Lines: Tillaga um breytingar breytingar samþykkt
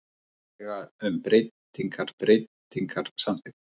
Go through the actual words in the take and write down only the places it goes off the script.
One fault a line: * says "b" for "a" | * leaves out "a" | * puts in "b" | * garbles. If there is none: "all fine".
all fine